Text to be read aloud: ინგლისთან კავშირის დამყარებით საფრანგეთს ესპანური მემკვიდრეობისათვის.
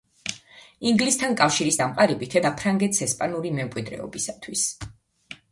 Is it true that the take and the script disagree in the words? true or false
false